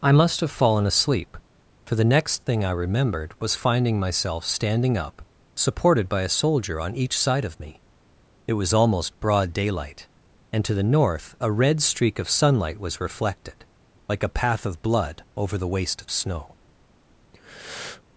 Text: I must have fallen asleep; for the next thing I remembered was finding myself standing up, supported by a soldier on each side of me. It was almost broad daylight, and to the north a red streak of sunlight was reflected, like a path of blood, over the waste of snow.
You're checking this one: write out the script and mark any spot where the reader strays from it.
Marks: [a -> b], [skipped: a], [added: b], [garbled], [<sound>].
I must have fallen asleep; for the next thing I remembered was finding myself standing up, supported by a soldier on each side of me. It was almost broad daylight, and to the north a red streak of sunlight was reflected, like a path of blood, over the waste of snow. [breath]